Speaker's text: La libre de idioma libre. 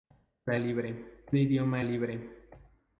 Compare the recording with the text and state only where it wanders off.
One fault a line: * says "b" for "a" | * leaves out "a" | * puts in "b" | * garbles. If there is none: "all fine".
all fine